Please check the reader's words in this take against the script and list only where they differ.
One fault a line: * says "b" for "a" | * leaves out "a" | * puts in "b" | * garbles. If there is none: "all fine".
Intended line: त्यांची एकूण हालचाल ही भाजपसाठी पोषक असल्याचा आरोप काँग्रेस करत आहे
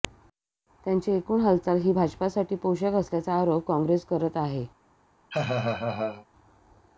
all fine